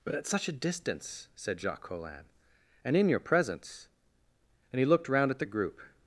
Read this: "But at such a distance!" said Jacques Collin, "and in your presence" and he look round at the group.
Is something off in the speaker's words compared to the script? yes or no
yes